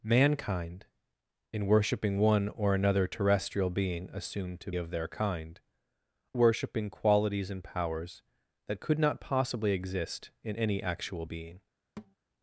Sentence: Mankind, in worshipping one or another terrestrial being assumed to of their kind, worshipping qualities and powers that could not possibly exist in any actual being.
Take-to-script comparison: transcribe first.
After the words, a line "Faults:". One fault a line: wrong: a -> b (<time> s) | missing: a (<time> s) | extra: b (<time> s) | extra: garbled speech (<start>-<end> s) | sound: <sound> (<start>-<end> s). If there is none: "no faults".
Mankind, in worshipping one or another terrestrial being assumed to of their kind, worshipping qualities and powers that could not possibly exist in any actual being.
Faults:
sound: thud (12.0-12.2 s)